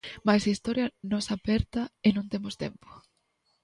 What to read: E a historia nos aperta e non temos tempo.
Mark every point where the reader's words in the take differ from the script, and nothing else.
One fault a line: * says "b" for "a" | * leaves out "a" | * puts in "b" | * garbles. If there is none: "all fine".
* says "Mais" for "E"